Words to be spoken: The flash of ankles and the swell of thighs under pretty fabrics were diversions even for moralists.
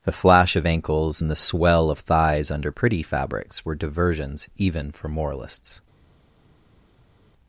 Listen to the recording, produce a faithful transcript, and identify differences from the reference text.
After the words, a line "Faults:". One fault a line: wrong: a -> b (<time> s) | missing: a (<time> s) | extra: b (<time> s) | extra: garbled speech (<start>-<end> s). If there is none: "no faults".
The flash of ankles and the swell of thighs under pretty fabrics were diversions even for moralists.
Faults:
no faults